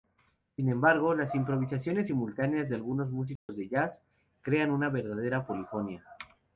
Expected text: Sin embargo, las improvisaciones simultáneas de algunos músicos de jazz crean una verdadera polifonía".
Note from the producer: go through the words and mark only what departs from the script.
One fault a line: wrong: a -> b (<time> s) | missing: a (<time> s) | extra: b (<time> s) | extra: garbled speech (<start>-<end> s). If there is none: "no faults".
no faults